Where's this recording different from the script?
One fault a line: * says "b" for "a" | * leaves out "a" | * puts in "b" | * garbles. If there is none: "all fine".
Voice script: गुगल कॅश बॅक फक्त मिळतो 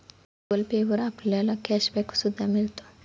* puts in "पे वर आपल्याला"
* says "सुद्धा" for "फक्त"